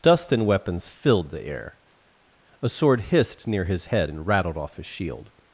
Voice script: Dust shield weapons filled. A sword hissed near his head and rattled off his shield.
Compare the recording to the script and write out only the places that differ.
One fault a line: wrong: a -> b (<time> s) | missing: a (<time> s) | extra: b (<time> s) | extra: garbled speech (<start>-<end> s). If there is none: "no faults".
wrong: shield -> and (0.3 s)
extra: the air (1.3 s)